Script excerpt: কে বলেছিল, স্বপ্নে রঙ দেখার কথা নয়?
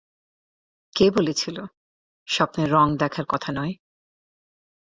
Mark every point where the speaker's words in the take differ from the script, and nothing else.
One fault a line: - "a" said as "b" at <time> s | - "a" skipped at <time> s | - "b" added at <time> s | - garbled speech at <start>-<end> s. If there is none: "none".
none